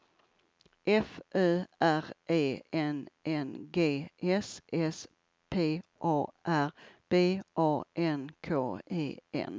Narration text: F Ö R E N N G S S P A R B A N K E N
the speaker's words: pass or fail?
pass